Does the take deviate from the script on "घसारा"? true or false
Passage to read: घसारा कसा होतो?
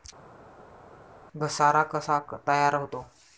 false